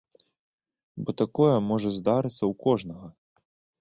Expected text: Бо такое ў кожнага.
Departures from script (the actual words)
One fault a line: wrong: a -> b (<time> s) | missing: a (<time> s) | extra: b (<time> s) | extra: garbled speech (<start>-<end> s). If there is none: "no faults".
extra: можа здарыцца (1.7 s)